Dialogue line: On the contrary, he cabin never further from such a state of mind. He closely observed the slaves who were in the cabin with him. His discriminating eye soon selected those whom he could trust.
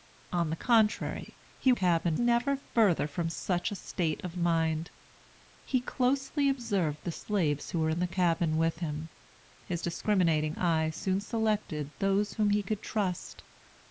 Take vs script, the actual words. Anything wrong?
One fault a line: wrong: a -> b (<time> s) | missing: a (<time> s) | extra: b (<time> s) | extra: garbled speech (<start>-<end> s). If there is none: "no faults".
no faults